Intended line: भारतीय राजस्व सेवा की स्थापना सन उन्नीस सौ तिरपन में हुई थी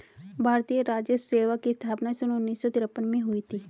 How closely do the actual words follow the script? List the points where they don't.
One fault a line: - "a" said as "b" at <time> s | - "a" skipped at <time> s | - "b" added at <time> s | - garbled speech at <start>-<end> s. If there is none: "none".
none